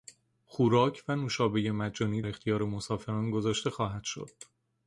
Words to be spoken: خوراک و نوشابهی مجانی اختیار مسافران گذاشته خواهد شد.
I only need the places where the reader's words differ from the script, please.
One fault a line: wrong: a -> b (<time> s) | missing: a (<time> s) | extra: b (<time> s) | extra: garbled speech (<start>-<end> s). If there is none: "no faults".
no faults